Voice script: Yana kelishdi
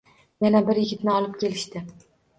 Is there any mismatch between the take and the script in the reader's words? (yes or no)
yes